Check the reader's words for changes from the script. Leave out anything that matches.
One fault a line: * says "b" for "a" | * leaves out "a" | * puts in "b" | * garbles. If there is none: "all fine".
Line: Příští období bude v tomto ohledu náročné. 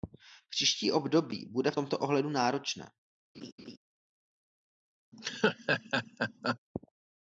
all fine